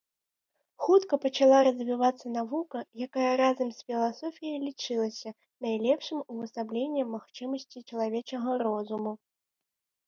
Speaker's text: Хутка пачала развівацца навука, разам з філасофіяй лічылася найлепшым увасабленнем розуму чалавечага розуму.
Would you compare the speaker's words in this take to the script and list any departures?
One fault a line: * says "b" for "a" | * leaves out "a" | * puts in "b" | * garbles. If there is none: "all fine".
* puts in "якая"
* says "магчымасцей" for "розуму"